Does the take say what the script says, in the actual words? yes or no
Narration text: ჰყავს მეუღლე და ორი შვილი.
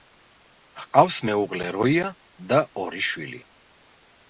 no